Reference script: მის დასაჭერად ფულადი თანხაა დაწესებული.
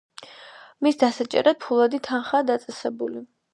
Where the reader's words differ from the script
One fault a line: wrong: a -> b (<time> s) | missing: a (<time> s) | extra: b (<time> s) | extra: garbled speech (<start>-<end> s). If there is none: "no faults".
no faults